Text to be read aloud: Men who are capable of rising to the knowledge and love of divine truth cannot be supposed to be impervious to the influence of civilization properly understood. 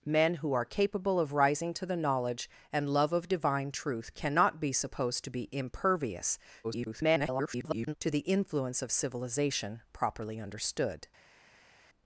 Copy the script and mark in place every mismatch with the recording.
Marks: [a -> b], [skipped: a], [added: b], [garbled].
Men who are capable of rising to the knowledge and love of divine truth cannot be supposed to be impervious [garbled] to the influence of civilization properly understood.